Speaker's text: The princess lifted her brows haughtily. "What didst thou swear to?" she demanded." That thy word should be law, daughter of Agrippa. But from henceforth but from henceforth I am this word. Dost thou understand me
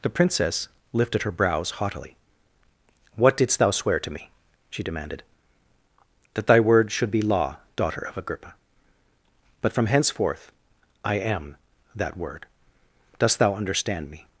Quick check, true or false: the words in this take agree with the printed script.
false